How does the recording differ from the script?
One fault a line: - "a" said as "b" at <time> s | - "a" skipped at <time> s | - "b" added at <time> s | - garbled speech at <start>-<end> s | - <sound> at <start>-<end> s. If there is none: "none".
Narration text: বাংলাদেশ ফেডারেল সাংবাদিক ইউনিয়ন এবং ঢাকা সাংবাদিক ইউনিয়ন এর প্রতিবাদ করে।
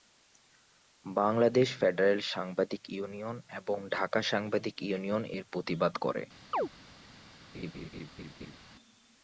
- chirp at 6.5-6.7 s
- laugh at 7.5-8.6 s